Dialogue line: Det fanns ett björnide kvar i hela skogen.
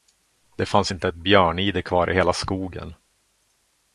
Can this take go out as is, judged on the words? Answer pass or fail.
fail